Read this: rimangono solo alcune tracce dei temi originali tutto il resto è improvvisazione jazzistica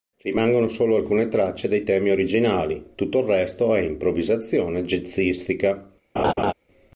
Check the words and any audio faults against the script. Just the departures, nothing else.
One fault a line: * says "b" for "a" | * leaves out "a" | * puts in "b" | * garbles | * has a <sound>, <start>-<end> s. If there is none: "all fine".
* has a laugh, 6.2-6.5 s